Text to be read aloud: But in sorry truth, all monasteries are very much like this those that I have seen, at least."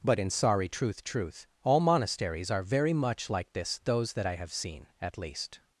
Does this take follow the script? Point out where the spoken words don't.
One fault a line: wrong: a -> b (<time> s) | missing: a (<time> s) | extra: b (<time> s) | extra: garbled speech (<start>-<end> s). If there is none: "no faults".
extra: truth (1.0 s)